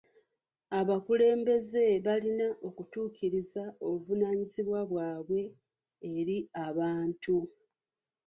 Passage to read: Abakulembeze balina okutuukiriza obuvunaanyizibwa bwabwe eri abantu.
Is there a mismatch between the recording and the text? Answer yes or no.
no